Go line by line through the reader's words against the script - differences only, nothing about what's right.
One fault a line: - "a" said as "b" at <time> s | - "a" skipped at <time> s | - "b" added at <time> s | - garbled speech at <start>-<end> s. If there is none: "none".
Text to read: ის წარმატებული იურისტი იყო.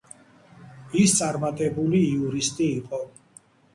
none